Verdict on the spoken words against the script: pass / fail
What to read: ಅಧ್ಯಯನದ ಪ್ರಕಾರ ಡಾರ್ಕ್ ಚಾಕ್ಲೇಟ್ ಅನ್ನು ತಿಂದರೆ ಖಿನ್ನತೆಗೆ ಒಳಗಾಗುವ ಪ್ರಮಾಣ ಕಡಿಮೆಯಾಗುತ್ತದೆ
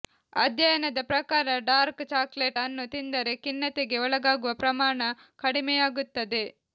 pass